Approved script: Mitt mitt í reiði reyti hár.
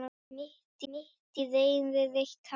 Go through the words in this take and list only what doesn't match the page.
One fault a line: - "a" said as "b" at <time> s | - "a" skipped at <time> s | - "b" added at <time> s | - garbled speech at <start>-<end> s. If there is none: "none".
none